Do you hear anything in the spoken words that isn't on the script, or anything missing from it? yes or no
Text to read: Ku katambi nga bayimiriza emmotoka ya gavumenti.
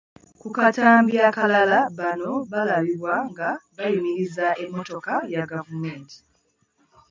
yes